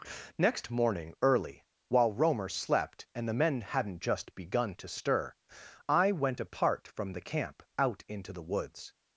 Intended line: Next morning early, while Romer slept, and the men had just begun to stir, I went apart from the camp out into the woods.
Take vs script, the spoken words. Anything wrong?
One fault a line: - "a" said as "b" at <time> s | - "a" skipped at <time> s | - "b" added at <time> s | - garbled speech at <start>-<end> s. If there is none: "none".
- "had" said as "hadn't" at 3.6 s